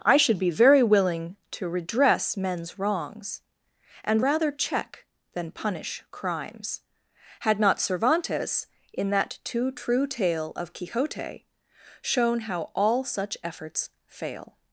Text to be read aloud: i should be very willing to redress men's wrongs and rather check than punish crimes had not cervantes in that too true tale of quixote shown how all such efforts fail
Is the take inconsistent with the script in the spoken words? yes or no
no